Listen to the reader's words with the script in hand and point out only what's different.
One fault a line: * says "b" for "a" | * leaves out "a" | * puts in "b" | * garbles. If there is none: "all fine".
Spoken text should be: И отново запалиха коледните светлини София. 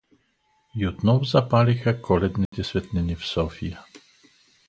* puts in "в"